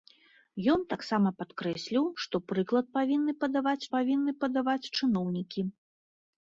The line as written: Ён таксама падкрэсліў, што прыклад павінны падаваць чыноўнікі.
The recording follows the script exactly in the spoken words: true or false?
false